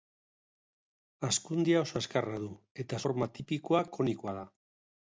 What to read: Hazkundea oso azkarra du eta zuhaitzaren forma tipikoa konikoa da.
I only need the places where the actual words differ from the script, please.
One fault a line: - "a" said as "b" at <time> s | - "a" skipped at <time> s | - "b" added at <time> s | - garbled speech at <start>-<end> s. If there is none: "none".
- "zuhaitzaren" skipped at 3.0 s